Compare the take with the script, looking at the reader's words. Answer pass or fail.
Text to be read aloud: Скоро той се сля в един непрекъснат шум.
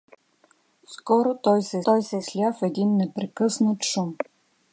fail